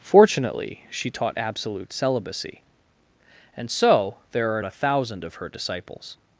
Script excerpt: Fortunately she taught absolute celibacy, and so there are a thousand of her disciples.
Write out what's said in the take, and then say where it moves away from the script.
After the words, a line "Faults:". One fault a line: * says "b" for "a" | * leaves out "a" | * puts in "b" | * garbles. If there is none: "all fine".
Fortunately she taught absolute celibacy, and so there are a thousand of her disciples.
Faults:
all fine